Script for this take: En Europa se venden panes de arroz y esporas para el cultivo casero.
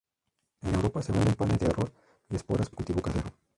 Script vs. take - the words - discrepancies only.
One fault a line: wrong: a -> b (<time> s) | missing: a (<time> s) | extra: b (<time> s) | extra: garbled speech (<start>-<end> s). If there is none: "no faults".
missing: para (2.7 s)